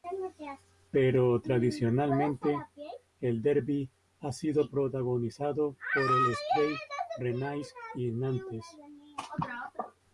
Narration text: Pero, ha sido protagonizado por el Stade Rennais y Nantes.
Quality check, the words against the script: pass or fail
fail